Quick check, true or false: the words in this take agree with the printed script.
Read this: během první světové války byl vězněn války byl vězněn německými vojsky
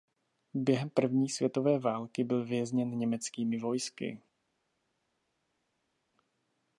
false